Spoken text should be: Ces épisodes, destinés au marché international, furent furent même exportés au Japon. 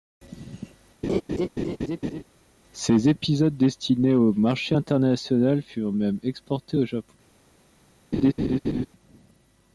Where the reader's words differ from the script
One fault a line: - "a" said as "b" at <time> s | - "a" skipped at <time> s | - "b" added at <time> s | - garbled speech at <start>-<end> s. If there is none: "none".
- "furent" skipped at 5.9 s